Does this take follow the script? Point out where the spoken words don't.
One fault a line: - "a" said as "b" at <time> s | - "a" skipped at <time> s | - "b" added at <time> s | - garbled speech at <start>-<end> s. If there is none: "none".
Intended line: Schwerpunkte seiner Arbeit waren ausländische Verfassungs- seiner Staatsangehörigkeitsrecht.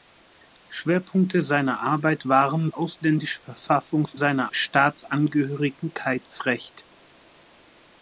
none